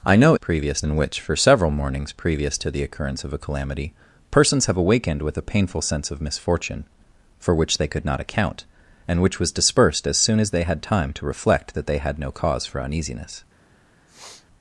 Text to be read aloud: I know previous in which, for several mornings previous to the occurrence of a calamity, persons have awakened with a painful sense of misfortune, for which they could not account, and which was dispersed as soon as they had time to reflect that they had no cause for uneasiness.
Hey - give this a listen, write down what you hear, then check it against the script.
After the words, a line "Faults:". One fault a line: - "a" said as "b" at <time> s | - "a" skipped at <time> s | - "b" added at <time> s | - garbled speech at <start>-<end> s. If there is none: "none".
I know previous in which, for several mornings previous to the occurrence of a calamity, persons have awakened with a painful sense of misfortune, for which they could not account, and which was dispersed as soon as they had time to reflect that they had no cause for uneasiness.
Faults:
none